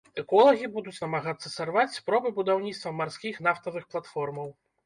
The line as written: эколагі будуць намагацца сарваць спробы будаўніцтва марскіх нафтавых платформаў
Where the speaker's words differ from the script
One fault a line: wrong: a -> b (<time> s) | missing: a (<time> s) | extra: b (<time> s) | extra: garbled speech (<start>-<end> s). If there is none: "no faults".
no faults